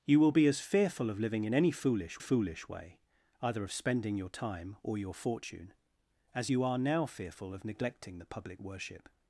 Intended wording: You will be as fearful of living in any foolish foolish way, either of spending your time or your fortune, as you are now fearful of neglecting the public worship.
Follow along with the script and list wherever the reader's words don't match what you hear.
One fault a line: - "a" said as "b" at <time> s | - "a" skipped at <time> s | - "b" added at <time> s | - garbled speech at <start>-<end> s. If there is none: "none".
none